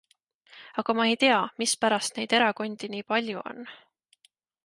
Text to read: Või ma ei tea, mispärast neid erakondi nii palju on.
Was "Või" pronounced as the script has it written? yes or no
no